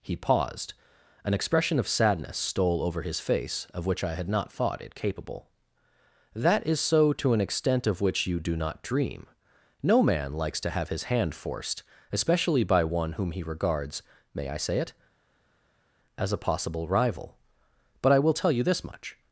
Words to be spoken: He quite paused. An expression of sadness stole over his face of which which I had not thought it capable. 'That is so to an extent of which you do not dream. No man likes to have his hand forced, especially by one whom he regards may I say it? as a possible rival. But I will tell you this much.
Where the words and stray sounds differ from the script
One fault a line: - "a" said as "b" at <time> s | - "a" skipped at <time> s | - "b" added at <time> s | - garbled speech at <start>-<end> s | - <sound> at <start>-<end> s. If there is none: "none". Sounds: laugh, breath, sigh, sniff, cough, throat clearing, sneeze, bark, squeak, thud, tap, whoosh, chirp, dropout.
- "quite" skipped at 0.1 s
- "which" skipped at 4.0 s